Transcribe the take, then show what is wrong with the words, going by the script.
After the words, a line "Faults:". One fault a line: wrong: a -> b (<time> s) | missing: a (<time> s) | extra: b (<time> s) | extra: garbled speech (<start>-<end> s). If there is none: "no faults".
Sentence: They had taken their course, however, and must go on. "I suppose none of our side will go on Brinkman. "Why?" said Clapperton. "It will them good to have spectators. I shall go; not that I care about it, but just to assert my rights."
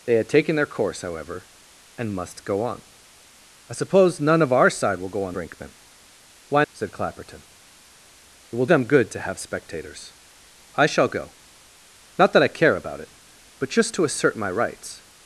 They had taken their course, however, and must go on. "I suppose none of our side will go on Brinkman. "Why?" said Clapperton. "It will them good to have spectators. I shall go; not that I care about it, but just to assert my rights."
Faults:
no faults